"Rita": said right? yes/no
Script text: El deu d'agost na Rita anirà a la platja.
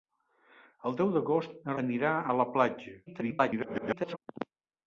no